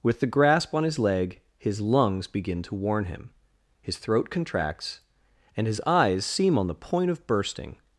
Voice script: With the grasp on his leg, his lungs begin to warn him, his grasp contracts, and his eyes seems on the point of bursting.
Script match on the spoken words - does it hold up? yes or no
no